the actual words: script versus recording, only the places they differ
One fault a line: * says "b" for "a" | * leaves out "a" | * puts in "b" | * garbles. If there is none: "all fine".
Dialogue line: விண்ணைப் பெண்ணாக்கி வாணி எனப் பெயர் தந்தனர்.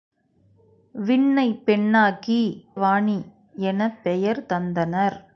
all fine